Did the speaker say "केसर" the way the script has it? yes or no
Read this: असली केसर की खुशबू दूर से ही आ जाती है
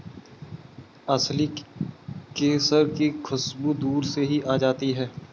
yes